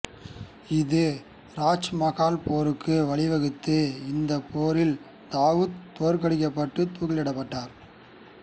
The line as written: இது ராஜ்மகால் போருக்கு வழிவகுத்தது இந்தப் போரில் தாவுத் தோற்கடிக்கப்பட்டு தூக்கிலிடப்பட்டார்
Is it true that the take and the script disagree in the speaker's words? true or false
false